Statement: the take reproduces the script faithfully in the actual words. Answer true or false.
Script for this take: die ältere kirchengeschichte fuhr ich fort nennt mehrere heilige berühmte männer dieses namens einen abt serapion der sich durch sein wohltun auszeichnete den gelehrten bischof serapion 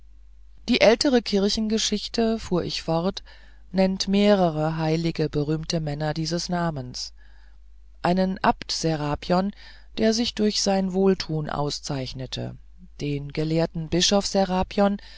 true